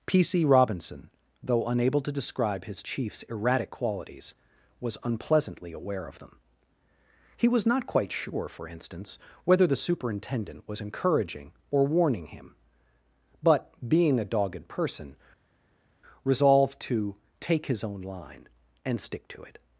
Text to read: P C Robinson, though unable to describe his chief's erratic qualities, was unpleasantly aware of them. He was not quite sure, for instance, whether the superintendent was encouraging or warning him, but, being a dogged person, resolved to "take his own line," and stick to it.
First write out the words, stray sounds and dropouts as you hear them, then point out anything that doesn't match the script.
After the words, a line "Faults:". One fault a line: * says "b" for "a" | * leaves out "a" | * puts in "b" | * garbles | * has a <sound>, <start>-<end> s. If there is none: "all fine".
P C Robinson, though unable to describe his chief's erratic qualities, was unpleasantly aware of them. He was not quite sure, for instance, whether the superintendent was encouraging or warning him, but, being a dogged person, resolved to "take his own line," and stick to it.
Faults:
all fine